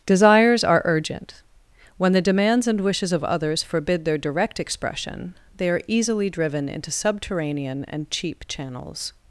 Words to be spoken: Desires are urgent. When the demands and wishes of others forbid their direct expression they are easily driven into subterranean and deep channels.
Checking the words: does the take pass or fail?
fail